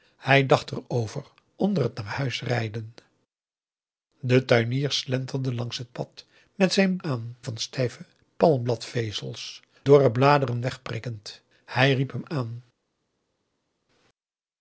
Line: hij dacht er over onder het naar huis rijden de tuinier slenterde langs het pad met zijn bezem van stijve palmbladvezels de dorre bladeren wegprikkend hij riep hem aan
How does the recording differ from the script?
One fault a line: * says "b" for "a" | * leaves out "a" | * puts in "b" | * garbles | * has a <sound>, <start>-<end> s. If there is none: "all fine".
* says "aan" for "bezem"
* leaves out "de"